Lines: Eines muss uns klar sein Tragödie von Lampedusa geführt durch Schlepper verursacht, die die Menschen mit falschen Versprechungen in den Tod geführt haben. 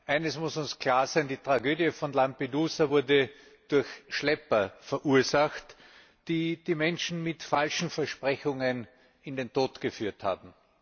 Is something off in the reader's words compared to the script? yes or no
yes